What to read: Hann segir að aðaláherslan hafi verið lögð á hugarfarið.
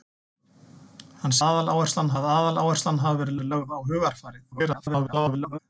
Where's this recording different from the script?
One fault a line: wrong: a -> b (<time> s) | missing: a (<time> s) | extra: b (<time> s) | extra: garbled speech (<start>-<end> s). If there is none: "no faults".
wrong: segir -> aðaláherslan (1.5 s)
extra: verið (3.4 s)
extra: garbled speech (4.5-5.6 s)